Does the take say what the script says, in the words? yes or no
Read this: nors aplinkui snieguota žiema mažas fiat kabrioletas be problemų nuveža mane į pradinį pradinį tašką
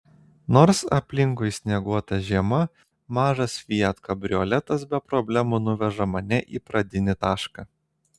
no